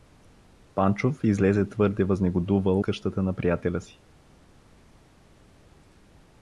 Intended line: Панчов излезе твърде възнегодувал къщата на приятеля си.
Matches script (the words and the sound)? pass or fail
pass